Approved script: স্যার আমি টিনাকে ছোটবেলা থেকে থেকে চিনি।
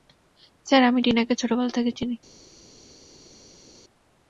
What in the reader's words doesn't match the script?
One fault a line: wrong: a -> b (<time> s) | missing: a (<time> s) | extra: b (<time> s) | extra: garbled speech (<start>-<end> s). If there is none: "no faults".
missing: থেকে (1.9 s)